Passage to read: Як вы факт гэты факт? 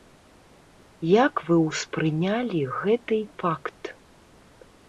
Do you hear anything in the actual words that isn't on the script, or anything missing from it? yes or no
yes